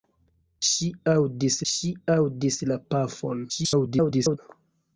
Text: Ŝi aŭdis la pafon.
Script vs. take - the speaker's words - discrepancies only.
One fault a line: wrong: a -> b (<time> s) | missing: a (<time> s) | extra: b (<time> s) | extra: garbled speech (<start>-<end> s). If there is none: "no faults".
extra: ŝi aŭdis (1.7 s)
extra: garbled speech (3.5-4.4 s)